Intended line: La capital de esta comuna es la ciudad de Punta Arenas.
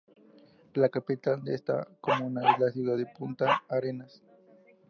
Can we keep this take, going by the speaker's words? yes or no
yes